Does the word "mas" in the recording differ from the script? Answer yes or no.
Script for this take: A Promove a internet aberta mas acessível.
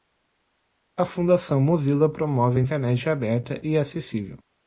yes